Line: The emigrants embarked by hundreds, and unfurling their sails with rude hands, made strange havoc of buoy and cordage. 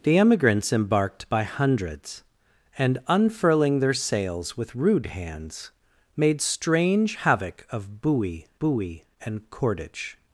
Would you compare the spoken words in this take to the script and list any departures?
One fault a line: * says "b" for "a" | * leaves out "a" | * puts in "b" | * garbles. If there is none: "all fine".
* puts in "buoy"